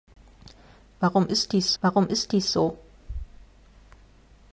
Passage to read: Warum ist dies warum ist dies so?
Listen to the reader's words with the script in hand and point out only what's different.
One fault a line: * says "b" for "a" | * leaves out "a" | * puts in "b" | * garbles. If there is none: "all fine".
all fine